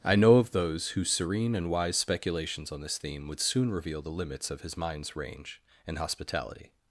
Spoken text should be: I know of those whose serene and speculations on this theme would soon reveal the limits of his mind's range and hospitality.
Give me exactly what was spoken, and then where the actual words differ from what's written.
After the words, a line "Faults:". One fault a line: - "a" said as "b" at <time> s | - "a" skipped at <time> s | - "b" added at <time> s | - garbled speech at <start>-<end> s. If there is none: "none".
I know of those whose serene and wise speculations on this theme would soon reveal the limits of his mind's range and hospitality.
Faults:
- "wise" added at 1.7 s